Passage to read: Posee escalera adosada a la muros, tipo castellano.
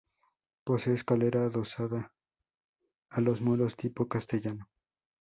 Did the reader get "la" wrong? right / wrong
wrong